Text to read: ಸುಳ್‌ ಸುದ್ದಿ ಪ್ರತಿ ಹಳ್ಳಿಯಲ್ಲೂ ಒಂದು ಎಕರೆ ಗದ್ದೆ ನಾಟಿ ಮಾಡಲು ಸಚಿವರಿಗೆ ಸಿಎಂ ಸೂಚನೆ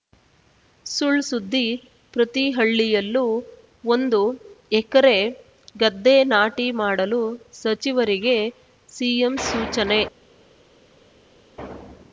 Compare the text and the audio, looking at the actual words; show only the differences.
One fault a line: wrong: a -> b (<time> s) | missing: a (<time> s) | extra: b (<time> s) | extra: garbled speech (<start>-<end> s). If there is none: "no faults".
no faults